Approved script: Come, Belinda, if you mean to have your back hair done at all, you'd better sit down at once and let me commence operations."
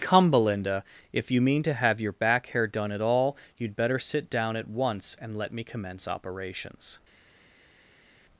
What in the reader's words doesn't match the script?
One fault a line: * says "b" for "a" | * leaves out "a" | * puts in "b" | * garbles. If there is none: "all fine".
all fine